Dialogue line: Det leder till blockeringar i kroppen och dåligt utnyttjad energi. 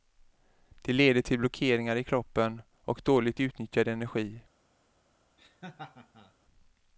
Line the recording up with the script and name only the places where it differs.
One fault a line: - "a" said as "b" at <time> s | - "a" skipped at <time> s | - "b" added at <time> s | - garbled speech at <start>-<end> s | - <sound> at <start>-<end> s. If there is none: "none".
- laugh at 5.4-6.3 s